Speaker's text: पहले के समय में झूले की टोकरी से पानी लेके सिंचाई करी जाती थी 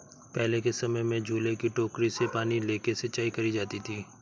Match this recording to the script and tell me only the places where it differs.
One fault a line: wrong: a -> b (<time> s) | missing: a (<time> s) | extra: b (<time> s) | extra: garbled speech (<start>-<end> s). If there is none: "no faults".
no faults